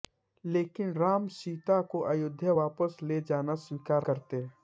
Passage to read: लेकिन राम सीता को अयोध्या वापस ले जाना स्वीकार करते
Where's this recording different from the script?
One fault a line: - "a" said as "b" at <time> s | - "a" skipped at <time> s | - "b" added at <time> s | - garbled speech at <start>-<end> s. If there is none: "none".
none